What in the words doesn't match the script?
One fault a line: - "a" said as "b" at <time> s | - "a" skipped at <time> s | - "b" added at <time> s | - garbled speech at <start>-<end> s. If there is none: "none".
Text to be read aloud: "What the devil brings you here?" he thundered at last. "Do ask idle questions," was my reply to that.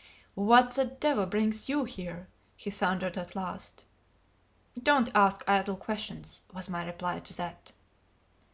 - "Do" said as "Don't" at 4.8 s